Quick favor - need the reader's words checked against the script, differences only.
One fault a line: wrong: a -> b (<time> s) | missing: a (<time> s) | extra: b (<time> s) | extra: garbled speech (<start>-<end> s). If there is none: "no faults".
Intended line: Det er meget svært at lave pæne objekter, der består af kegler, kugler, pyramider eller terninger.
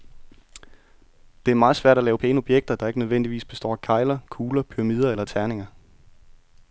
extra: ikke nødvendigvis (2.9 s)